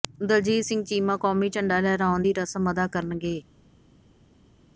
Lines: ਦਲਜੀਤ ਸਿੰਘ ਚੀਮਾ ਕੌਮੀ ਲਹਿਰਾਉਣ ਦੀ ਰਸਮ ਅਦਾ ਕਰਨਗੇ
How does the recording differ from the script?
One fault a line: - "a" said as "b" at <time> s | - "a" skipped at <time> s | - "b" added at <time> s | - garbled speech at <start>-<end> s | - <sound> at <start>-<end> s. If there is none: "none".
- "ਝੰਡਾ" added at 1.5 s